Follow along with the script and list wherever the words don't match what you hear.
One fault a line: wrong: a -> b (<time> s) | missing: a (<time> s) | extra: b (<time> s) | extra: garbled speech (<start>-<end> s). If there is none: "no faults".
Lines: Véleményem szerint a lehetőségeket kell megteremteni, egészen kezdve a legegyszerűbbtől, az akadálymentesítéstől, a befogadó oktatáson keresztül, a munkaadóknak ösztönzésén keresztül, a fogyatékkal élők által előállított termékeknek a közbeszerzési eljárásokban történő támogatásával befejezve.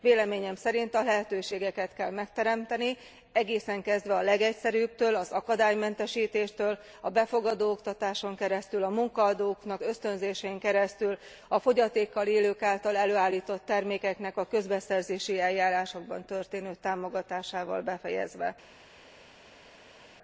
no faults